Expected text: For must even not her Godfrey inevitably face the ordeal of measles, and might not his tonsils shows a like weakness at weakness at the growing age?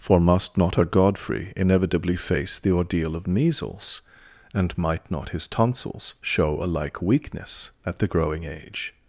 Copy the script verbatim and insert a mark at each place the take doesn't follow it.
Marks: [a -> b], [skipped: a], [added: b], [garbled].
For must [skipped: even] not her Godfrey inevitably face the ordeal of measles, and might not his tonsils [shows -> show] a like weakness at [skipped: weakness at] the growing age?